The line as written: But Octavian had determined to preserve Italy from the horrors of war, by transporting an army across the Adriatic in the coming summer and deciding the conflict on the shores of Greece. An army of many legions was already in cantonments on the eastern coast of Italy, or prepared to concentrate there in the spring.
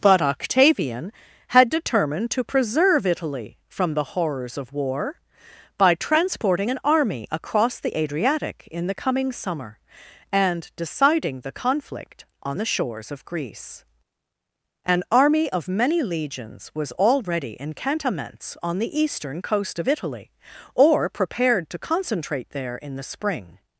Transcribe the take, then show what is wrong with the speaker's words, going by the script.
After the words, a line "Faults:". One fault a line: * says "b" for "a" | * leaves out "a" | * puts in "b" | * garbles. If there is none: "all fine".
But Octavian had determined to preserve Italy from the horrors of war, by transporting an army across the Adriatic in the coming summer and deciding the conflict on the shores of Greece. An army of many legions was already in cantonments on the eastern coast of Italy, or prepared to concentrate there in the spring.
Faults:
all fine